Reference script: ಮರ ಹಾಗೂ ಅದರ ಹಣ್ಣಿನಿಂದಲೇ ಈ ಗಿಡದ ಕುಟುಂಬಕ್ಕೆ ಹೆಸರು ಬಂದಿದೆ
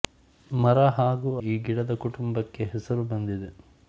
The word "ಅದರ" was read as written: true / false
false